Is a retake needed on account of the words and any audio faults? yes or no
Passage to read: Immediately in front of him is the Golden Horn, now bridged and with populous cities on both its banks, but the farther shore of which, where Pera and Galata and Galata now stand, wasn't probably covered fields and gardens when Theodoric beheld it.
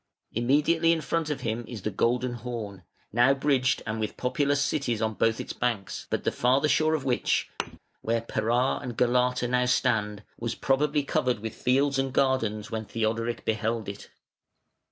yes